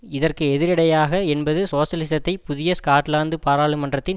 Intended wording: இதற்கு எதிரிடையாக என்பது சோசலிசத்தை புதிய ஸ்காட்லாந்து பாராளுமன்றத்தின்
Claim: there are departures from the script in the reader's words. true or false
false